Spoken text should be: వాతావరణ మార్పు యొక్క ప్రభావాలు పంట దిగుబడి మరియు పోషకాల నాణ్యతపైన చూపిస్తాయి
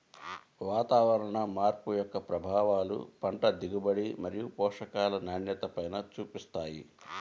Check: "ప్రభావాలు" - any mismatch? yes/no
no